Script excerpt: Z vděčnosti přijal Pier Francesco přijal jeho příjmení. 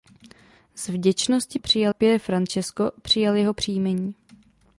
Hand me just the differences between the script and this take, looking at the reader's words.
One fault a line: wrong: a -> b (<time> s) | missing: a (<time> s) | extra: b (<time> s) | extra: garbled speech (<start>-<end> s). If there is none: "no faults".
no faults